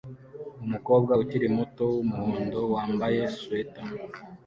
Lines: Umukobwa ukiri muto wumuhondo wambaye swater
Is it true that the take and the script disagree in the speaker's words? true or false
false